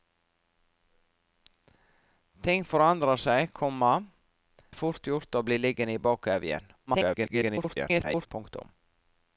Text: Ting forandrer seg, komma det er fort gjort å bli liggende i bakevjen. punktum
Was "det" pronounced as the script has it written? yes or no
no